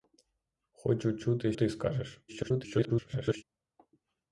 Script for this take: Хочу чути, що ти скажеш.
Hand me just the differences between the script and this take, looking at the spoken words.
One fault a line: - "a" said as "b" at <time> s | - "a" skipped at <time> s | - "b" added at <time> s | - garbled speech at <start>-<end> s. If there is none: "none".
- "що" skipped at 1.5 s
- garbled speech at 2.3-3.4 s